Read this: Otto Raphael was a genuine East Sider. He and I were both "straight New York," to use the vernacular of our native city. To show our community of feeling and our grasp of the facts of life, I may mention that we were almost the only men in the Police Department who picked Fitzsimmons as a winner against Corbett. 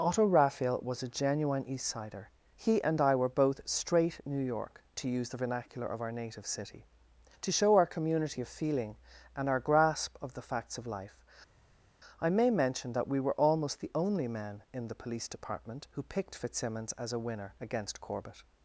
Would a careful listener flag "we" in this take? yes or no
no